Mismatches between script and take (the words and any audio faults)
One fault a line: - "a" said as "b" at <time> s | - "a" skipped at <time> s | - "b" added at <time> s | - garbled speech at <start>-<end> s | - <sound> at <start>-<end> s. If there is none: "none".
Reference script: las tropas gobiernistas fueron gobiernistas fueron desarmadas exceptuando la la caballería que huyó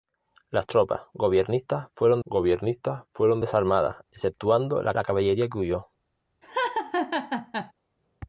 - laugh at 6.4-7.7 s